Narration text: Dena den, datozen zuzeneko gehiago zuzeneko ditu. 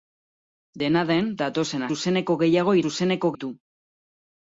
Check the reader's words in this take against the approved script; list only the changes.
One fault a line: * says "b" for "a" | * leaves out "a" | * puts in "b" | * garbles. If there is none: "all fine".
all fine